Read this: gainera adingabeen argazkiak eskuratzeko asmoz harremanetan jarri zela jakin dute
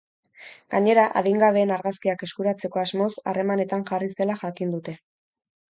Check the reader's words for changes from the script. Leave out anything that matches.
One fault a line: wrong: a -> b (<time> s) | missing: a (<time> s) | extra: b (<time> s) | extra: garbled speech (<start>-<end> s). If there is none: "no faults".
no faults